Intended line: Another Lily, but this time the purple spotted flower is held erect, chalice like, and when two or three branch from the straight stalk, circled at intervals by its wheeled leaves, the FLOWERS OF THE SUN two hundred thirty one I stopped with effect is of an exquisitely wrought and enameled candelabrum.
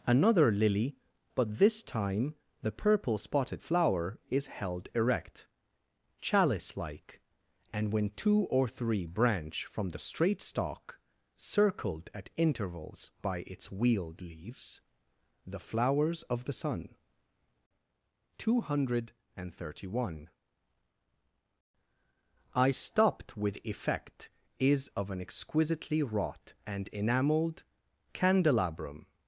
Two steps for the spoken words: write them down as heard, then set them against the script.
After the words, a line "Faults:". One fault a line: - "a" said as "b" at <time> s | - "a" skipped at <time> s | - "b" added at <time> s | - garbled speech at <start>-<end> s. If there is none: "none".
Another Lily, but this time the purple spotted flower is held erect, chalice like, and when two or three branch from the straight stalk, circled at intervals by its wheeled leaves, the FLOWERS OF THE SUN two hundred thirty one I stopped with effect is of an exquisitely wrought and enameled candelabrum.
Faults:
none